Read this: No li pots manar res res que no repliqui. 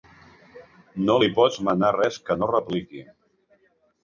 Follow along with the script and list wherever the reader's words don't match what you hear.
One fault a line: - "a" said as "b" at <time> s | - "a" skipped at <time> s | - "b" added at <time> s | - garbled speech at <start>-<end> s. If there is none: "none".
- "res" skipped at 2.2 s